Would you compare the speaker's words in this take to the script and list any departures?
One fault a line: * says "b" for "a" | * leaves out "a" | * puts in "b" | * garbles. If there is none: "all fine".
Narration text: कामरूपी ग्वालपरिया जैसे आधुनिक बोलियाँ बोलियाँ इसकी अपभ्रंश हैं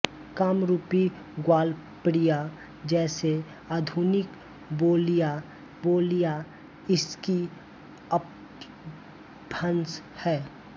all fine